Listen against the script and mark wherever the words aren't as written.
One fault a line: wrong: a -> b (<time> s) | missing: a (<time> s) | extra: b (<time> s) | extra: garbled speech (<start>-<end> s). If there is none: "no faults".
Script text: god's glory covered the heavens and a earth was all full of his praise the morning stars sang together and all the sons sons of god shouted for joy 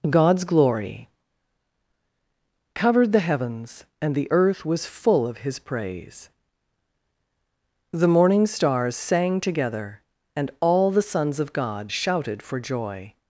wrong: a -> the (4.2 s)
missing: all (4.9 s)
missing: sons (11.4 s)